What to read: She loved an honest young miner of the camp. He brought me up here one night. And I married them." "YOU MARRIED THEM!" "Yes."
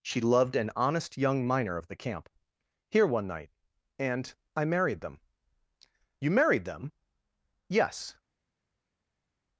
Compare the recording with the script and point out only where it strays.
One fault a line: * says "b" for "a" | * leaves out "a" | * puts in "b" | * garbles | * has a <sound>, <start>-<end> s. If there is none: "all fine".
* leaves out "He brought me up"